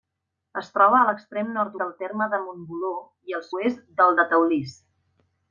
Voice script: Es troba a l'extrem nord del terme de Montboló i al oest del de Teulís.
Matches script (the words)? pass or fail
pass